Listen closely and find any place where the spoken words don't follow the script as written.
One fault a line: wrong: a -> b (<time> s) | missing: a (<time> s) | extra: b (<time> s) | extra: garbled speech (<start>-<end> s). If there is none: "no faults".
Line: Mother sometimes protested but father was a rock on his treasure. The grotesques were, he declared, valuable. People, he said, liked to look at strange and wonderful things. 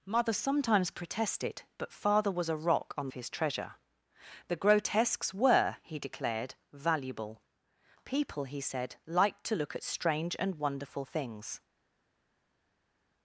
no faults